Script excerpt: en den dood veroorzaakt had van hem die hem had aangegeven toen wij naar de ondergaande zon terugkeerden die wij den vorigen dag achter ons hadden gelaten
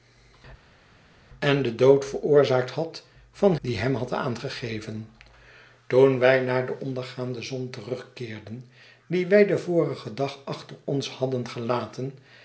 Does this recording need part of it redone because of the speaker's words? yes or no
yes